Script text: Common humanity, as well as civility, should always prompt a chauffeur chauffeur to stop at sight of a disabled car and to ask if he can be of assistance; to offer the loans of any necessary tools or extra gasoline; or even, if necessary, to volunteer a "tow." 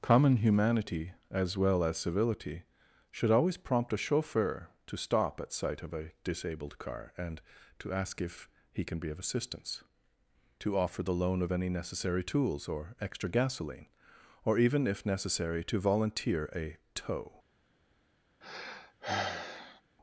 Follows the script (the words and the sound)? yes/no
no